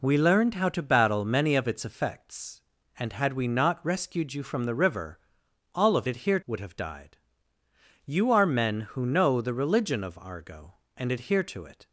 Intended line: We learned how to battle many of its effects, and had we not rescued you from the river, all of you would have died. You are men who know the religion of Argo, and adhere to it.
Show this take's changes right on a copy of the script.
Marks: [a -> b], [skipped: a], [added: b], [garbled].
We learned how to battle many of its effects, and had we not rescued you from the river, all of [you -> adhere] would have died. You are men who know the religion of Argo, and adhere to it.